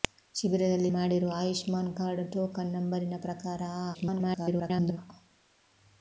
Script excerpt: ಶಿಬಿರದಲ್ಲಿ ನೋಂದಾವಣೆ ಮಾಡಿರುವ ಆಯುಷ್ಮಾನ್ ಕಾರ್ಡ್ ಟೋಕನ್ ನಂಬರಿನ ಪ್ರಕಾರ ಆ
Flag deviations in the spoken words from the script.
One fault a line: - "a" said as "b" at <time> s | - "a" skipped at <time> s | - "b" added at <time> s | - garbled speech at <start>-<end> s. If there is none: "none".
- "ನೋಂದಾವಣೆ" skipped at 0.9 s
- garbled speech at 3.9-5.0 s